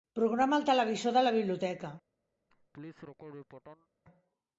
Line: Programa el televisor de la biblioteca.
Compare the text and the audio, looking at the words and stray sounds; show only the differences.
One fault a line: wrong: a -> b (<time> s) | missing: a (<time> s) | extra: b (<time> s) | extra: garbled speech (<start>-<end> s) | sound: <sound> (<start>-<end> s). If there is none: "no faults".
sound: laugh (2.5-3.9 s)